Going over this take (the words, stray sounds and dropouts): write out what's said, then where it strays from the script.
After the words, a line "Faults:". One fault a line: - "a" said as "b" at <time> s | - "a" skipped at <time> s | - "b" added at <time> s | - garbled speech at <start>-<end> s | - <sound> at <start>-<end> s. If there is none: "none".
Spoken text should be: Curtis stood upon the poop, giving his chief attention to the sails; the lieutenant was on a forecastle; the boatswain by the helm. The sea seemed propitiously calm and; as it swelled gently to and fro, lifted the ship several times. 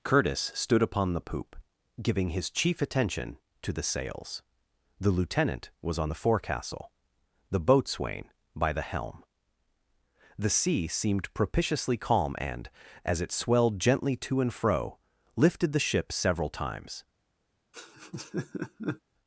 Curtis stood upon the poop, giving his chief attention to the sails; the lieutenant was on the forecastle; the boatswain by the helm. The sea seemed propitiously calm and; as it swelled gently to and fro, lifted the ship several times.
Faults:
- "a" said as "the" at 6.1 s
- laugh at 17.7-19.0 s